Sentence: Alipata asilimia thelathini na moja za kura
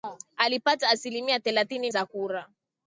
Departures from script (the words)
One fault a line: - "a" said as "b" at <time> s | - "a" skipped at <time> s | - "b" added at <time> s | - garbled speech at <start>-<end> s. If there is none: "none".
- "na moja" skipped at 1.9 s